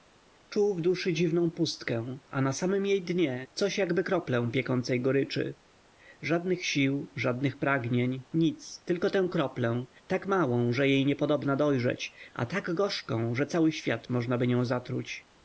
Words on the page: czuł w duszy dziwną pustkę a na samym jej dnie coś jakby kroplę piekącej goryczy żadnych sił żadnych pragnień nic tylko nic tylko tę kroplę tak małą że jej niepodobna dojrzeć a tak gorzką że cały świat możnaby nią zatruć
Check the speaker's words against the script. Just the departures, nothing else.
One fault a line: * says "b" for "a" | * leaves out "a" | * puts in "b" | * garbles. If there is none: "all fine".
* leaves out "nic tylko"